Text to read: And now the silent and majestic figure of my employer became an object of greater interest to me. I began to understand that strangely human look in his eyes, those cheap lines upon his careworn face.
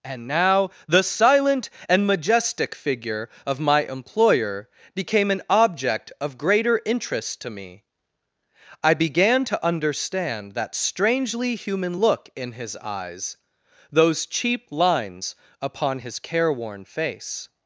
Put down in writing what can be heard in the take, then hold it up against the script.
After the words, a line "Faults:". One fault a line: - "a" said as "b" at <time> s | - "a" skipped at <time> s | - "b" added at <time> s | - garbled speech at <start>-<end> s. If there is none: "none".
And now the silent and majestic figure of my employer became an object of greater interest to me. I began to understand that strangely human look in his eyes, those cheap lines upon his careworn face.
Faults:
none